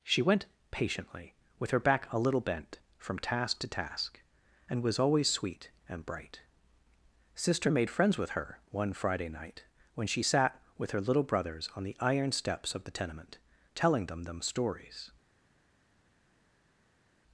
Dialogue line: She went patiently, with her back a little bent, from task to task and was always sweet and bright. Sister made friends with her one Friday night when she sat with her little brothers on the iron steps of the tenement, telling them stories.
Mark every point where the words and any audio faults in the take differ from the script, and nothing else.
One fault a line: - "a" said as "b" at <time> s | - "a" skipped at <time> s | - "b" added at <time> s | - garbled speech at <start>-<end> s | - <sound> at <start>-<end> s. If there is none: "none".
- "them" added at 14.2 s